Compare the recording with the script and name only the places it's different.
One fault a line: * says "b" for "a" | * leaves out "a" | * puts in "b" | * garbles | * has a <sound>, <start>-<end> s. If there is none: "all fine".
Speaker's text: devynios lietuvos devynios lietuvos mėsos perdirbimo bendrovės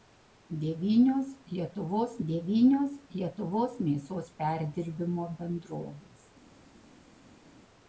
all fine